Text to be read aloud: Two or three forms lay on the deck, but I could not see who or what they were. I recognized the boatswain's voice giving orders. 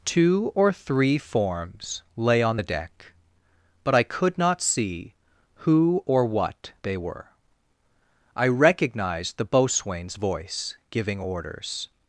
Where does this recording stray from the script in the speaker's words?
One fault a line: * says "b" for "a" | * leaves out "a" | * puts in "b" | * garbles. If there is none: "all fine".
all fine